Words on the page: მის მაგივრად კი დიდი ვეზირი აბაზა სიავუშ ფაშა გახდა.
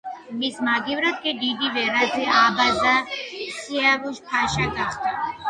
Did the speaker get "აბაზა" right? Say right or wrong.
right